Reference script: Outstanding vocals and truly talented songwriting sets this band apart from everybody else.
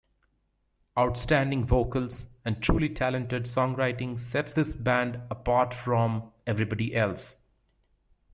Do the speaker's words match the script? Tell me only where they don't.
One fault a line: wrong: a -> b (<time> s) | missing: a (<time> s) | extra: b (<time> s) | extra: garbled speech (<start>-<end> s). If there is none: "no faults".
no faults